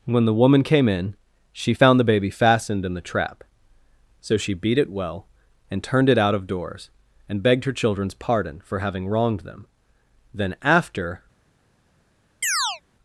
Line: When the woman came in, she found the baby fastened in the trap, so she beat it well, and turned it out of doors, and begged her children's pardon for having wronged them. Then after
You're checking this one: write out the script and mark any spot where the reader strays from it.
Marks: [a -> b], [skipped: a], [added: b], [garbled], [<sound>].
When the woman came in, she found the baby fastened in the trap, so she beat it well, and turned it out of doors, and begged her children's pardon for having wronged them. Then after [chirp]